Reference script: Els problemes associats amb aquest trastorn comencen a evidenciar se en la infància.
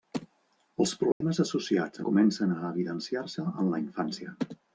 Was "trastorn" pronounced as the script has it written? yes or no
no